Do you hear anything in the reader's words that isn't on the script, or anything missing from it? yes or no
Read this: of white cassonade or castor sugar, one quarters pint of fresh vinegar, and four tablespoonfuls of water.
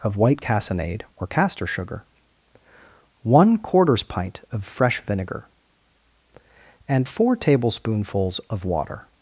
no